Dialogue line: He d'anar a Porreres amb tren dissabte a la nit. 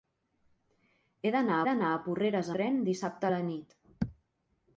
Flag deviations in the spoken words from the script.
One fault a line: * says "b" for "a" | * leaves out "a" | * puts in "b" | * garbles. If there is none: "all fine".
* puts in "d'anar"
* leaves out "amb"